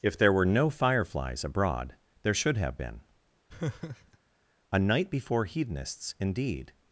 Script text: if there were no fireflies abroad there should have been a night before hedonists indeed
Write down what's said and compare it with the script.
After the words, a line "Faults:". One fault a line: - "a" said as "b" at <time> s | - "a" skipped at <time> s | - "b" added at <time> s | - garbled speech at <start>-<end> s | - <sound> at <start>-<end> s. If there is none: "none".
if there were no fireflies abroad there should have been a night before hedonists indeed
Faults:
- laugh at 3.5-4.2 s